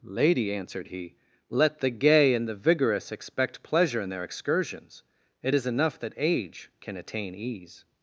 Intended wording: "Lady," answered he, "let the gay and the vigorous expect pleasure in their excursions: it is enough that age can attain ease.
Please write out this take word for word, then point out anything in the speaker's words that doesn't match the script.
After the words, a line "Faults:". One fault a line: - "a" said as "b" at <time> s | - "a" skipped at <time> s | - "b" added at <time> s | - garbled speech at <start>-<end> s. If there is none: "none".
"Lady," answered he, "let the gay and the vigorous expect pleasure in their excursions: it is enough that age can attain ease.
Faults:
none